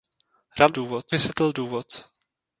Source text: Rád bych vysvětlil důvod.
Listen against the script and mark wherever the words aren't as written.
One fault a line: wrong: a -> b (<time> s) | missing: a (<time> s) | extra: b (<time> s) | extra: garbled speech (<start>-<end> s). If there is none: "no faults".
wrong: bych -> důvod (0.7 s)